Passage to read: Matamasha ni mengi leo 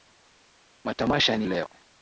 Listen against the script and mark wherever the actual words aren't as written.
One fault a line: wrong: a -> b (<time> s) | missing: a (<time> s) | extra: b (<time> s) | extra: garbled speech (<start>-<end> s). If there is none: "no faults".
missing: mengi (1.5 s)